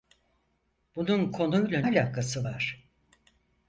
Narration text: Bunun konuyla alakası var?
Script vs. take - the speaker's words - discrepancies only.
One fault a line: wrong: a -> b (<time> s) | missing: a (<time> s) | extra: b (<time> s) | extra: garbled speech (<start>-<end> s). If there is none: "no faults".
no faults